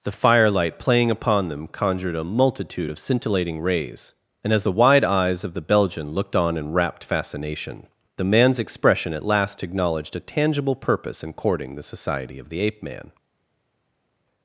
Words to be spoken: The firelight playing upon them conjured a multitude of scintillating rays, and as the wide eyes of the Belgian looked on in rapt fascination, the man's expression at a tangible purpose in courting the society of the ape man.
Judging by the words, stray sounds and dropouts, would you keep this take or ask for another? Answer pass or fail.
fail